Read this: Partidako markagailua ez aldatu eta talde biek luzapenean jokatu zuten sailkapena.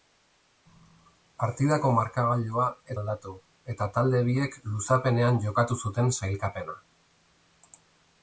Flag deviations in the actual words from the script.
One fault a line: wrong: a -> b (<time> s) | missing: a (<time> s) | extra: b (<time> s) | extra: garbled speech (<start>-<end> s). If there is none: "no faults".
no faults